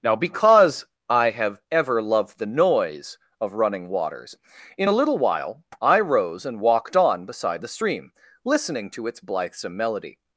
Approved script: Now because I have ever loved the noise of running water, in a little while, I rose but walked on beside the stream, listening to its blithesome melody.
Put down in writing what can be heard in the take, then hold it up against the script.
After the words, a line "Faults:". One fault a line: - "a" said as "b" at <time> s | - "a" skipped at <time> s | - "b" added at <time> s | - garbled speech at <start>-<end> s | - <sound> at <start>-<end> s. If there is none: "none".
Now because I have ever loved the noise of running waters, in a little while, I rose and walked on beside the stream, listening to its blithesome melody.
Faults:
- "water" said as "waters" at 3.9 s
- "but" said as "and" at 6.4 s